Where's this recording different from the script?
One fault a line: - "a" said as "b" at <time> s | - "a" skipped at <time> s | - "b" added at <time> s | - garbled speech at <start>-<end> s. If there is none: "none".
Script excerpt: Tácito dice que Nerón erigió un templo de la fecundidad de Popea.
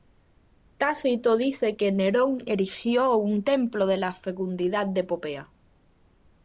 none